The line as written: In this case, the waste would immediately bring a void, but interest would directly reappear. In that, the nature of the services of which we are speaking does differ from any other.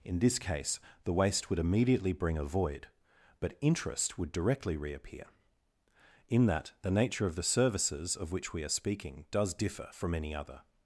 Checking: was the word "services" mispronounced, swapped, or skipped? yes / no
no